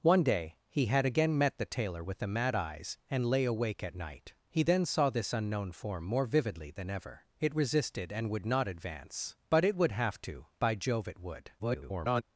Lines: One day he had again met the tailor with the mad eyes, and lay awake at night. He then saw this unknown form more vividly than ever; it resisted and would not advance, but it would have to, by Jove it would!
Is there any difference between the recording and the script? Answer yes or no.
yes